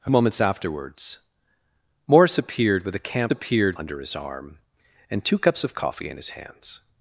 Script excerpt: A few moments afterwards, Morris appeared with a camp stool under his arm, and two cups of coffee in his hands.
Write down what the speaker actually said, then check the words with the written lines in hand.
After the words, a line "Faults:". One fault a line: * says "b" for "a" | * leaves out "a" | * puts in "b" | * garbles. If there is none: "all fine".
A moments afterwards, Morris appeared with a camp appeared under his arm, and two cups of coffee in his hands.
Faults:
* leaves out "few"
* says "appeared" for "stool"